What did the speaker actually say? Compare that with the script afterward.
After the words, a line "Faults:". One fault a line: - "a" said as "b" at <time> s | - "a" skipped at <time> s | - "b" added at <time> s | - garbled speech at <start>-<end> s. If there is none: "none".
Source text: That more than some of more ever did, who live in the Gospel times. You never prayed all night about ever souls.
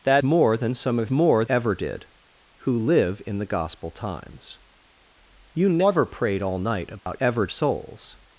That more than some of more ever did, who live in the Gospel times. You never prayed all night about ever souls.
Faults:
none